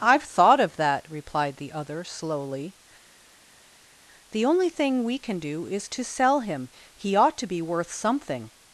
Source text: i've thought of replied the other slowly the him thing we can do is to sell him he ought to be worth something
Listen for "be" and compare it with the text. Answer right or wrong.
right